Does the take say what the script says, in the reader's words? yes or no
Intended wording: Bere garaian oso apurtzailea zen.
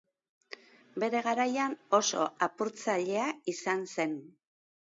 no